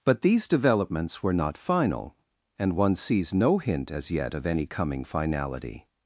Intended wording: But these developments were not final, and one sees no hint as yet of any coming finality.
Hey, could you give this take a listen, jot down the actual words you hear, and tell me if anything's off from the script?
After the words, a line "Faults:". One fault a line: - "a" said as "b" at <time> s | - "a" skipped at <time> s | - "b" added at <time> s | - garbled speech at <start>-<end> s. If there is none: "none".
But these developments were not final, and one sees no hint as yet of any coming finality.
Faults:
none